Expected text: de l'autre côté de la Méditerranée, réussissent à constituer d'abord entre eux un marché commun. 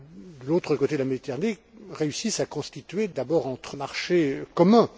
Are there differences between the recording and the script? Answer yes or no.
yes